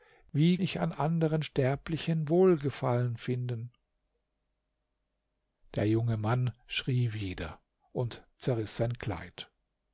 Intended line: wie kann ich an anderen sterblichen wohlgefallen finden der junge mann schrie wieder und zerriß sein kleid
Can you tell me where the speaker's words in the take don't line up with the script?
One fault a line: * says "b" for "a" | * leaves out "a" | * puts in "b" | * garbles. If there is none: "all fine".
* leaves out "kann"